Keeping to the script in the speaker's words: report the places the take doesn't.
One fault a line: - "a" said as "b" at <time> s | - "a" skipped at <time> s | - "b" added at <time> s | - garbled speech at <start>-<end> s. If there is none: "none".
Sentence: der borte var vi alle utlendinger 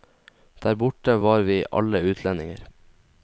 none